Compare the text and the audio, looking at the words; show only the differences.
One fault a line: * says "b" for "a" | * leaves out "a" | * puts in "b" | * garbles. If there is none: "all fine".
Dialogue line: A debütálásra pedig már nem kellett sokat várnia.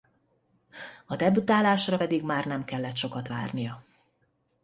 all fine